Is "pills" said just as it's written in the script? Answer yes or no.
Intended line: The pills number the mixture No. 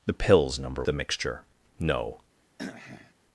yes